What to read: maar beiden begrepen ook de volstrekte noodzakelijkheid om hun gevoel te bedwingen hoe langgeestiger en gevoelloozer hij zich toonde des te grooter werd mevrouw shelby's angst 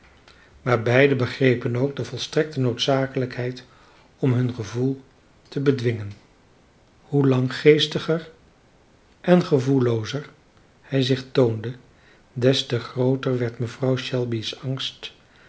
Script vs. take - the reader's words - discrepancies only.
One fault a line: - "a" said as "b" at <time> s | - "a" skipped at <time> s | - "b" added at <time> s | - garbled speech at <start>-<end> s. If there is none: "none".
none